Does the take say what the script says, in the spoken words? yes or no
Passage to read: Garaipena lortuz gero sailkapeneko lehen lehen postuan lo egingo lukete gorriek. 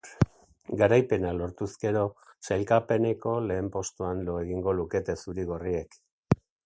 no